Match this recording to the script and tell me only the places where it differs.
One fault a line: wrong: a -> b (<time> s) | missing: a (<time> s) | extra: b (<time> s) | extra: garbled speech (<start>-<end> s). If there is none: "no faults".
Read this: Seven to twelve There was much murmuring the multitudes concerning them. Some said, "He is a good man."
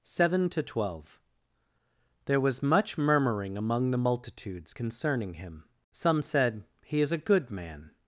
extra: among (3.5 s)
wrong: them -> him (5.3 s)